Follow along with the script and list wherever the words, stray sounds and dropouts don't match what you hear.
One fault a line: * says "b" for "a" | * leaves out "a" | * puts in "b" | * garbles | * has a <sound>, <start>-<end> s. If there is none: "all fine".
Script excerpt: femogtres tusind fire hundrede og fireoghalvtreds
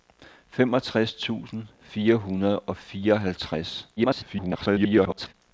* garbles